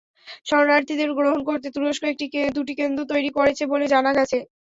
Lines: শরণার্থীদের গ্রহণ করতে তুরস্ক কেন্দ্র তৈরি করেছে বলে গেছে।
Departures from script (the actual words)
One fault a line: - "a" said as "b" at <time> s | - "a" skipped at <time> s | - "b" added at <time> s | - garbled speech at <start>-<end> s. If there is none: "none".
- "দুটি" added at 2.5 s
- "জানা" added at 3.9 s